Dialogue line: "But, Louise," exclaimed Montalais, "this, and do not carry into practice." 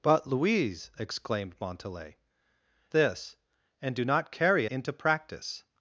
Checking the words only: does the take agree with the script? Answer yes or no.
yes